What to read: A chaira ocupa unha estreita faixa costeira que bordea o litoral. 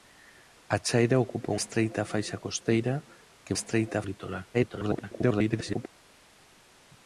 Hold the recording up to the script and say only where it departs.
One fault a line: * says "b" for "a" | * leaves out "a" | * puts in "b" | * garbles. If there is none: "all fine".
* leaves out "unha"
* says "estreita" for "bordea"
* garbles